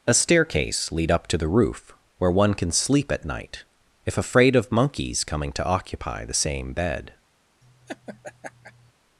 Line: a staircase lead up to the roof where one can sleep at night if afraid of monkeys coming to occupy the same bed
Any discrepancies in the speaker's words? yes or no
no